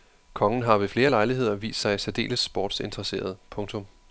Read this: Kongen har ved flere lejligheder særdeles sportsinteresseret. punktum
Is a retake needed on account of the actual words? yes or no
yes